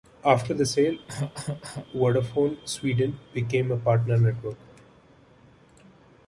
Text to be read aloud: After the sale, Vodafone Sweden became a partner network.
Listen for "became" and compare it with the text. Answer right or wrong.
right